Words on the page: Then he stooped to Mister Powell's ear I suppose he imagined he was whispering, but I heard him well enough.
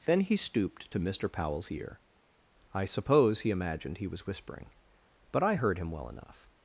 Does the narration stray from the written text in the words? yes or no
no